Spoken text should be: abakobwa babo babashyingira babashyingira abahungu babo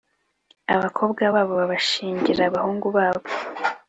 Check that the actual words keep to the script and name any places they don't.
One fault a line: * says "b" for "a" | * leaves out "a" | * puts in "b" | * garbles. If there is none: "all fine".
* leaves out "babashyingira"